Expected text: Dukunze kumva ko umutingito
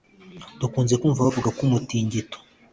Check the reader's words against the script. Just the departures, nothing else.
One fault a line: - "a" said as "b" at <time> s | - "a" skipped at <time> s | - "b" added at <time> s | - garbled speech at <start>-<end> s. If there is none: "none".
- "bavuga" added at 1.2 s